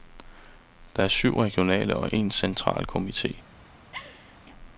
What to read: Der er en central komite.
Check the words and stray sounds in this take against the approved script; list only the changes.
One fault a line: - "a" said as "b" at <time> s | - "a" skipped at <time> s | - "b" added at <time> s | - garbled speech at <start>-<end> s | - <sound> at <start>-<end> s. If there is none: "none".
- "syv regionale og" added at 1.1 s
- laugh at 3.9-4.4 s